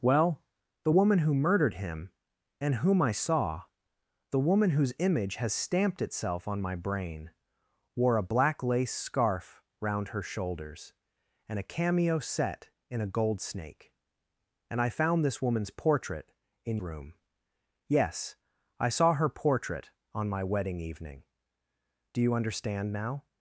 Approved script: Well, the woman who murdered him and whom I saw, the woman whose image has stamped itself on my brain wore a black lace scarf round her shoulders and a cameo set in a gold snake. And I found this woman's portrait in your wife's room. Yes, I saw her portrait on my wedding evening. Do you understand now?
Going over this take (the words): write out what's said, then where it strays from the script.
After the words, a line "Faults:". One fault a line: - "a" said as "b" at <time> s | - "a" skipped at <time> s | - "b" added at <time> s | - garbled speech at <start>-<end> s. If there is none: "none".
Well, the woman who murdered him and whom I saw, the woman whose image has stamped itself on my brain wore a black lace scarf round her shoulders and a cameo set in a gold snake. And I found this woman's portrait in room. Yes, I saw her portrait on my wedding evening. Do you understand now?
Faults:
- "your wife's" skipped at 16.8 s